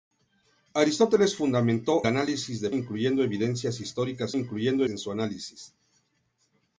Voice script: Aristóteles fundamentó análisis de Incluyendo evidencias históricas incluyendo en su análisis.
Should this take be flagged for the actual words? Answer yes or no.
no